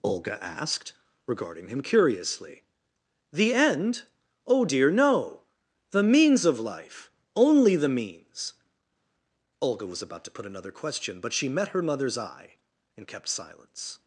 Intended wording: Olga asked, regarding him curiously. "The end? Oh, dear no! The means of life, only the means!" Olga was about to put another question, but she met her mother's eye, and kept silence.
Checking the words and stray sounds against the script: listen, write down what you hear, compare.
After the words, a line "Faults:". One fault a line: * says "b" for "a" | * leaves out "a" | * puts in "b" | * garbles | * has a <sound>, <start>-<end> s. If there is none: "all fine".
Olga asked, regarding him curiously. "The end? Oh, dear no! The means of life, only the means!" Olga was about to put another question, but she met her mother's eye, and kept silence.
Faults:
all fine